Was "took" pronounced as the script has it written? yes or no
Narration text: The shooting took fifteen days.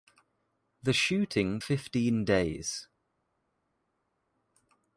no